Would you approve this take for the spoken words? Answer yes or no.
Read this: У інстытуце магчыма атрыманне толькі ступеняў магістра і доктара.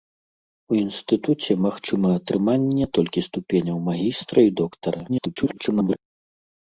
no